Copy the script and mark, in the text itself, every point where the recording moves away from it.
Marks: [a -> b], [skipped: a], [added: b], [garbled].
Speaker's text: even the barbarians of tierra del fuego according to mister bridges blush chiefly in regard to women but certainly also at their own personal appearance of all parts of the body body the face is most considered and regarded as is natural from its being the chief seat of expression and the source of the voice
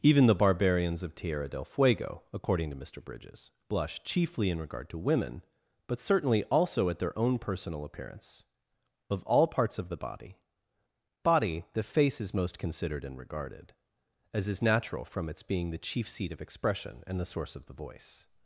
even the barbarians of tierra del fuego according to mister bridges blush chiefly in regard to women but certainly also at their own personal appearance of all parts of the body body the face is most considered and regarded as is natural from its being the chief seat of expression and the source of the voice